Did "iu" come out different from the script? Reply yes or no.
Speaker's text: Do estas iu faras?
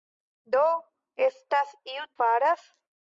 no